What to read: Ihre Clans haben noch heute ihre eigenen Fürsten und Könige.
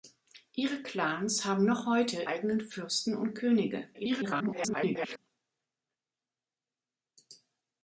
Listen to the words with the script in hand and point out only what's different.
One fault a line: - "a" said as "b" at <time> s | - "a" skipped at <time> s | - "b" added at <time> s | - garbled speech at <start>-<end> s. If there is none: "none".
- "ihre" skipped at 2.2 s
- garbled speech at 3.9-5.2 s